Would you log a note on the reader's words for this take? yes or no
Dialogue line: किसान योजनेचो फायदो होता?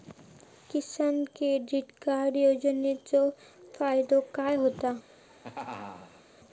yes